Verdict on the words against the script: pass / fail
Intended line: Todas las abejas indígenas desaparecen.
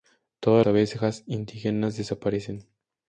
fail